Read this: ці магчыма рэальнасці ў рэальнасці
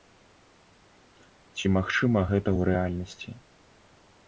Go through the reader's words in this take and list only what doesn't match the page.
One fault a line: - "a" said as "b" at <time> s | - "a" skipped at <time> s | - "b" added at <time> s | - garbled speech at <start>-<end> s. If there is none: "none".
- "рэальнасці" said as "гэта" at 2.3 s